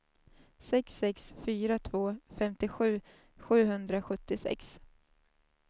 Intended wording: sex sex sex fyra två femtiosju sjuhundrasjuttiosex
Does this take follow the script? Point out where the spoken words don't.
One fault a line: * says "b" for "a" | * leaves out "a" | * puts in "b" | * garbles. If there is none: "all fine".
* leaves out "sex"